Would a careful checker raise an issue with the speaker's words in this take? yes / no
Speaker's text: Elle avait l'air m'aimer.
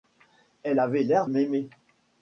no